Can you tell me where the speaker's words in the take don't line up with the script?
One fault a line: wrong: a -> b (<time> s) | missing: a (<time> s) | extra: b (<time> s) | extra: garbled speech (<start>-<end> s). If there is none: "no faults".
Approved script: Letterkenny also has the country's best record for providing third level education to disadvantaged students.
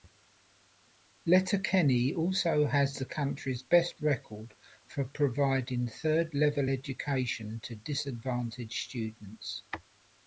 no faults